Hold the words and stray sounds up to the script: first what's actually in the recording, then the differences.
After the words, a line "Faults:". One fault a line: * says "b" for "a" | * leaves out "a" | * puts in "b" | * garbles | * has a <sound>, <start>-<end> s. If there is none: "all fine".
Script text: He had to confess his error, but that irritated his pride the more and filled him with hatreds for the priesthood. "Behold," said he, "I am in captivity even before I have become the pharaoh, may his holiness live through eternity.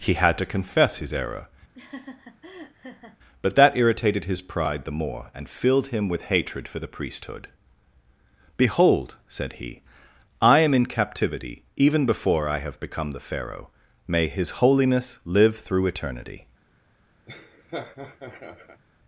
He had to confess his error, but that irritated his pride the more and filled him with hatred for the priesthood. "Behold," said he, "I am in captivity even before I have become the pharaoh, may his holiness live through eternity.
Faults:
* has a laugh, 1.7-3.2 s
* says "hatred" for "hatreds"
* has a laugh, 17.3-18.8 s